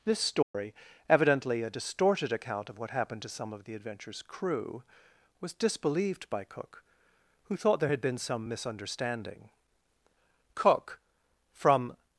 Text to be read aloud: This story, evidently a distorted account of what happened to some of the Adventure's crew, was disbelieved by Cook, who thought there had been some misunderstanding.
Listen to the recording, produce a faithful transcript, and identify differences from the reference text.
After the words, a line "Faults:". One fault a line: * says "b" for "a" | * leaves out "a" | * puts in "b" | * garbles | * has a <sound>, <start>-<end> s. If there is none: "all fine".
This story, evidently a distorted account of what happened to some of the Adventure's crew, was disbelieved by Cook, who thought there had been some misunderstanding. Cook, from
Faults:
* has a dropout, 0.4-0.5 s
* puts in "Cook from"